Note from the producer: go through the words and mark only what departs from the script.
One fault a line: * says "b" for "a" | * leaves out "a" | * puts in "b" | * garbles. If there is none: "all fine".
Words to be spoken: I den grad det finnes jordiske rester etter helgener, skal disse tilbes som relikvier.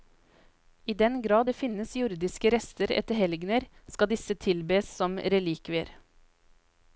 all fine